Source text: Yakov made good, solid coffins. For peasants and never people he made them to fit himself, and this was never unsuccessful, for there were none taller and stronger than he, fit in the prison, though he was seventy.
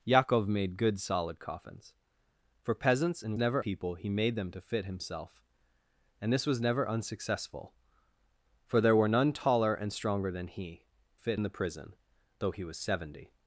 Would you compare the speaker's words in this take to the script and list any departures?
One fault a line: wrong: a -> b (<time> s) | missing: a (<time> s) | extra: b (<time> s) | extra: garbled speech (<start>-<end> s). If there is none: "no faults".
no faults